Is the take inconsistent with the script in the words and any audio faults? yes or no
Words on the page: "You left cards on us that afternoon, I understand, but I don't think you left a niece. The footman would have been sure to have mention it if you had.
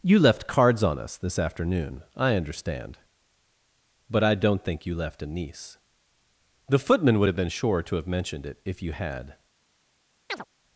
yes